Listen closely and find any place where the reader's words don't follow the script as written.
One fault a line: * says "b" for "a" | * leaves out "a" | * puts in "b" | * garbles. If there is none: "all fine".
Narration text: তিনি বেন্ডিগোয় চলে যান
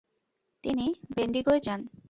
* leaves out "চলে"